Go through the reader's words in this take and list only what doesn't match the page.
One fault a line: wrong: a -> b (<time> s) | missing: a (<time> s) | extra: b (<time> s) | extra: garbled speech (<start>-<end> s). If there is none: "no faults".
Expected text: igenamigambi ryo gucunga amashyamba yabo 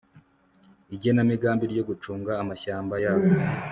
no faults